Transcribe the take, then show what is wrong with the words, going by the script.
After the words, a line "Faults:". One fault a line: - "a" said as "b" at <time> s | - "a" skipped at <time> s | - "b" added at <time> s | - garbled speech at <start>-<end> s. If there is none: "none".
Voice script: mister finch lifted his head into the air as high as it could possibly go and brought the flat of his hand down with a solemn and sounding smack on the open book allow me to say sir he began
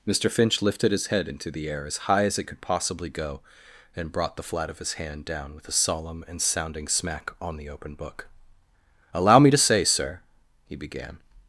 mister finch lifted his head into the air as high as it could possibly go and brought the flat of his hand down with a solemn and sounding smack on the open book allow me to say sir he began
Faults:
none